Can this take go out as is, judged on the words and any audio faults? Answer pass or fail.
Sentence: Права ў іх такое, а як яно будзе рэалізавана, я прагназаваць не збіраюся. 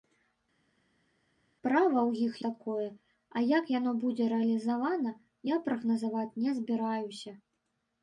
pass